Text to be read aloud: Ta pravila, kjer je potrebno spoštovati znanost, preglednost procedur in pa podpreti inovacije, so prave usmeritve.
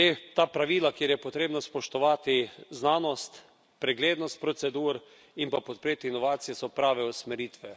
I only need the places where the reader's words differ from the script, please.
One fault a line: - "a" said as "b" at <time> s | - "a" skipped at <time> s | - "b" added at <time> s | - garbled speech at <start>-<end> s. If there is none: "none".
none